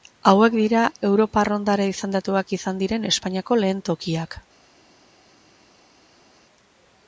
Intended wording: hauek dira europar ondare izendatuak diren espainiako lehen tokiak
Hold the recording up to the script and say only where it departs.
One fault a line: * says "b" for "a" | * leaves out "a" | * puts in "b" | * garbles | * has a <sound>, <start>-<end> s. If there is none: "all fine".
* puts in "izan"